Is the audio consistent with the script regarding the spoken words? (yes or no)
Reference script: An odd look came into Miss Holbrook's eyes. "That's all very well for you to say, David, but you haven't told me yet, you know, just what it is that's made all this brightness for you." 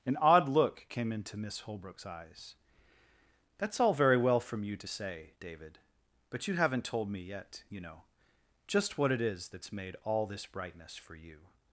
no